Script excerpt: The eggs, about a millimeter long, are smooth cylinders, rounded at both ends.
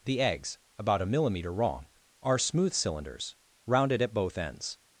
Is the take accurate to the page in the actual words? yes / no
no